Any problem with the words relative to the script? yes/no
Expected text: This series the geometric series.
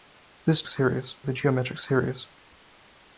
no